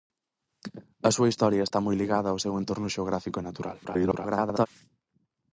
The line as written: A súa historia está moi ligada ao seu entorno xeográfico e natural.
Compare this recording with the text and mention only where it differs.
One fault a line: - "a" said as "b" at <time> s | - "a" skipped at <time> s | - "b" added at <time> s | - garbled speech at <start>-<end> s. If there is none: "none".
- garbled speech at 3.8-4.7 s